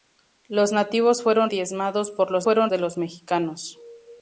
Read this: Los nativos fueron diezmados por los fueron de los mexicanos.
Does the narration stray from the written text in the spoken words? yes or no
no